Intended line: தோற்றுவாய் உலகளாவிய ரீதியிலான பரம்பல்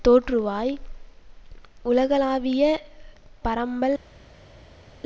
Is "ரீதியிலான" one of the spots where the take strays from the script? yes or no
yes